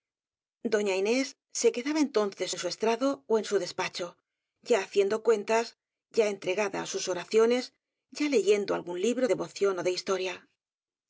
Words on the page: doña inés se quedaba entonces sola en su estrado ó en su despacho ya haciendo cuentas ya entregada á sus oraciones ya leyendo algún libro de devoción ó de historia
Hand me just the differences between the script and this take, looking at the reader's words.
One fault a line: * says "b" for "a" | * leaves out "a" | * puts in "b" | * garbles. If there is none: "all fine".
* leaves out "sola"
* leaves out "de"